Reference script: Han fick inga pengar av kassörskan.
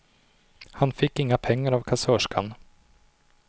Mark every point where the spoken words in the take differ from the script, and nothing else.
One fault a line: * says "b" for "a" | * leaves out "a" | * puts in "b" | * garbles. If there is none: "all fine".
all fine